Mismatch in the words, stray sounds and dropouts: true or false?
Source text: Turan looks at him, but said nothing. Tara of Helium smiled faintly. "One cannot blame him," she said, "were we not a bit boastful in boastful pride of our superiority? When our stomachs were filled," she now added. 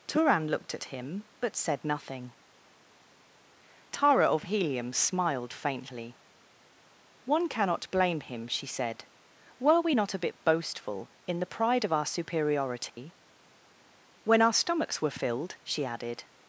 true